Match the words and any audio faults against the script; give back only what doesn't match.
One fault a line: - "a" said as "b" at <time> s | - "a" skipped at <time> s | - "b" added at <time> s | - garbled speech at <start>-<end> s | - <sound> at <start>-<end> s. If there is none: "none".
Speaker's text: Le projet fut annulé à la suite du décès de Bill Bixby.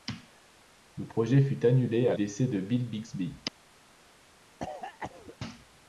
- "la suite du" skipped at 2.1 s
- cough at 4.6-5.4 s